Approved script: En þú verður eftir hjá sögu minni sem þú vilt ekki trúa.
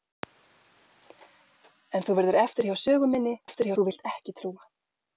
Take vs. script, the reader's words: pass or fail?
fail